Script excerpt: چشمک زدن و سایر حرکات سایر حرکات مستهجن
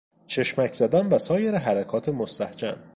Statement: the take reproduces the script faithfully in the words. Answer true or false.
false